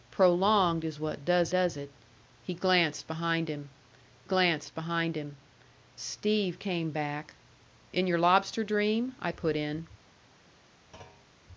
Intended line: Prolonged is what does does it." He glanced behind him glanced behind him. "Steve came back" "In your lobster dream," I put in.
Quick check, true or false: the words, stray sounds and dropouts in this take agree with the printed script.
false